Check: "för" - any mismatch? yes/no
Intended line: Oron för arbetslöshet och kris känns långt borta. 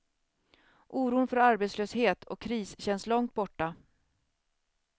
no